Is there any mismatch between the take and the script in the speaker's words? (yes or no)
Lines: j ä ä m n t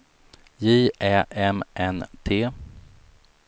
yes